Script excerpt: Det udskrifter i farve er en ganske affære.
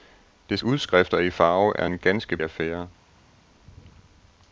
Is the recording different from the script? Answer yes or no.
no